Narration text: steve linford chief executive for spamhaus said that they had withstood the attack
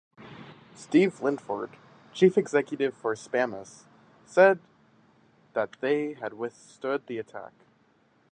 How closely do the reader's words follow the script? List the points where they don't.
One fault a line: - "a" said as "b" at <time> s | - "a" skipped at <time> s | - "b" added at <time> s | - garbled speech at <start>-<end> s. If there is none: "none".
none